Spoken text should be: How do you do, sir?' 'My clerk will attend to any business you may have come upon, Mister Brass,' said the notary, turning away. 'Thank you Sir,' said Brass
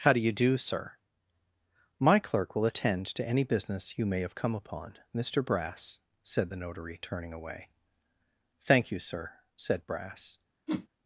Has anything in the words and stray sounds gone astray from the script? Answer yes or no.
yes